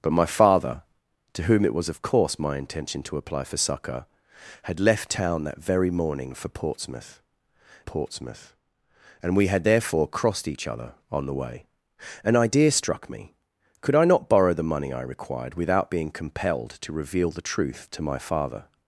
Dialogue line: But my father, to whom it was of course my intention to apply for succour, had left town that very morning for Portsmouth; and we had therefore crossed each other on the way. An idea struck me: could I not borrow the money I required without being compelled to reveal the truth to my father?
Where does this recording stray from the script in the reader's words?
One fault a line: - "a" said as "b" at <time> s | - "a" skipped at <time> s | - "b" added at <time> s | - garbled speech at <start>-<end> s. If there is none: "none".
- "Portsmouth" added at 7.8 s